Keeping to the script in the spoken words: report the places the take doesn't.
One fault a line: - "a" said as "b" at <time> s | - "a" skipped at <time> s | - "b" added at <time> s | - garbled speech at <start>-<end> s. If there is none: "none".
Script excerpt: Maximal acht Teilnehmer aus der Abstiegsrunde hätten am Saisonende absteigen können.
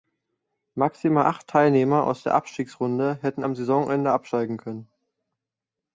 none